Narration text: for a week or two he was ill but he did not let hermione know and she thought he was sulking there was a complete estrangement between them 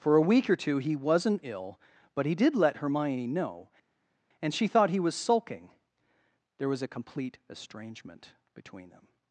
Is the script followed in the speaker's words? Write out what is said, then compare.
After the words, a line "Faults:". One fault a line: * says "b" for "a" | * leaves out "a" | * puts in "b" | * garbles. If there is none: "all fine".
for a week or two he wasn't ill but he did let hermione know and she thought he was sulking there was a complete estrangement between them
Faults:
* says "wasn't" for "was"
* leaves out "not"